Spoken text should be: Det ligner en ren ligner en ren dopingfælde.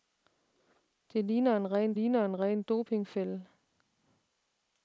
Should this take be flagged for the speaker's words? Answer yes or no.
no